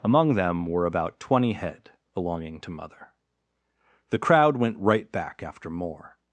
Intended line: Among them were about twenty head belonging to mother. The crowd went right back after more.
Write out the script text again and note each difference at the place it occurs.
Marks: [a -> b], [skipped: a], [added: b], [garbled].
Among them were about twenty head belonging to mother. The crowd went right back after more.